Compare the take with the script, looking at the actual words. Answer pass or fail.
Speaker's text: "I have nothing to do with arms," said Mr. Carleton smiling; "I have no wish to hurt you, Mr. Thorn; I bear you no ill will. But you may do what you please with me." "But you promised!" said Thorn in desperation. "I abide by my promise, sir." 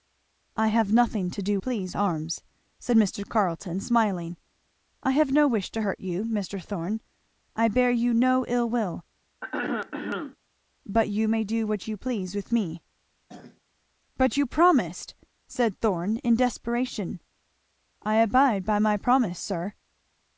fail